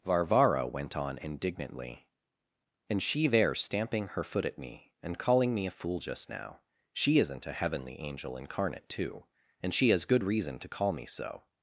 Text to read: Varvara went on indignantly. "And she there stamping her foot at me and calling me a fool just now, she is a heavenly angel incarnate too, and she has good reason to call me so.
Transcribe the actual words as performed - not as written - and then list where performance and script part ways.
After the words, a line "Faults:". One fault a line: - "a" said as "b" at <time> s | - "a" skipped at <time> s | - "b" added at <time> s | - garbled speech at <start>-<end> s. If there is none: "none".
Varvara went on indignantly. "And she there stamping her foot at me and calling me a fool just now, she isn't a heavenly angel incarnate too, and she has good reason to call me so.
Faults:
- "is" said as "isn't" at 7.2 s